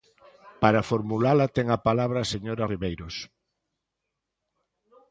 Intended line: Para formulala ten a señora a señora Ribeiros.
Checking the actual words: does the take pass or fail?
fail